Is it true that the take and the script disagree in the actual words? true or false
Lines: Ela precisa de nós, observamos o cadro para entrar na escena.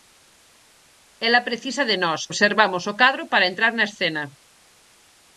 false